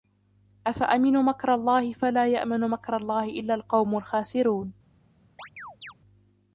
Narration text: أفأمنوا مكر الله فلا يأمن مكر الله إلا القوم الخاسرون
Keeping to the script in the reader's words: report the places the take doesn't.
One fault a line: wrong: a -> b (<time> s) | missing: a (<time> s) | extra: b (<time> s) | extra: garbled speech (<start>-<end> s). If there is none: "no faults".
no faults